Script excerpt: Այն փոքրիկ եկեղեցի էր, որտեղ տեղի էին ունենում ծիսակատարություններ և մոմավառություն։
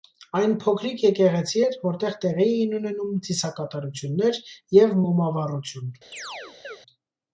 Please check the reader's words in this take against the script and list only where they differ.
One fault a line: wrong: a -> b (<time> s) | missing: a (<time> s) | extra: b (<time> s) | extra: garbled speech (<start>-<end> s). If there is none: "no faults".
no faults